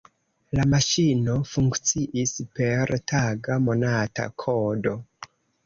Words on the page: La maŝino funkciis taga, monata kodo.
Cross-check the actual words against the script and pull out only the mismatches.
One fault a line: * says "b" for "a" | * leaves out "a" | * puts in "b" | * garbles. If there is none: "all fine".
* puts in "per"